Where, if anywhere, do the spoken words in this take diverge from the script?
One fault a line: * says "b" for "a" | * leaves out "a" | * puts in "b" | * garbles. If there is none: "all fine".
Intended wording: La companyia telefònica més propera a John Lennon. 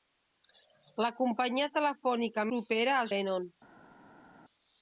* leaves out "més"
* leaves out "John"